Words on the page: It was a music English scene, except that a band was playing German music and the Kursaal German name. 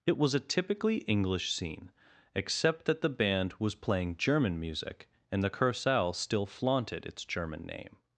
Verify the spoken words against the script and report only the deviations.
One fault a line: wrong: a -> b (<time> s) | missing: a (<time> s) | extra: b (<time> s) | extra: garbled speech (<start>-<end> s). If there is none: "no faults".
wrong: music -> typically (0.4 s)
wrong: a -> the (3.0 s)
extra: still flaunted its (6.1 s)